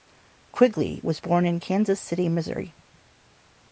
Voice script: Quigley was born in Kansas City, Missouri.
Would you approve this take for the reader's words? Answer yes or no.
yes